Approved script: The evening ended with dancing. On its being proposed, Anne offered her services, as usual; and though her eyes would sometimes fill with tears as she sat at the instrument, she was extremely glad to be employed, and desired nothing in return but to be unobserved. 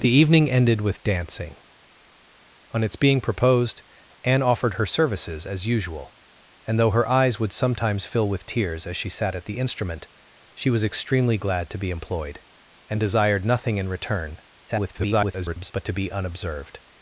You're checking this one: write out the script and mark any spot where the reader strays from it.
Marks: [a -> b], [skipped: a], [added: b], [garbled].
The evening ended with dancing. On its being proposed, Anne offered her services, as usual; and though her eyes would sometimes fill with tears as she sat at the instrument, she was extremely glad to be employed, and desired nothing in return [garbled] but to be unobserved.